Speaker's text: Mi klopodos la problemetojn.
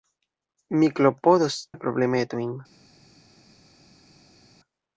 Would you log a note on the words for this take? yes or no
no